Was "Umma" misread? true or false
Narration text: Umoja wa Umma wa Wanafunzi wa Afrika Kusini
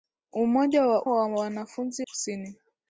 true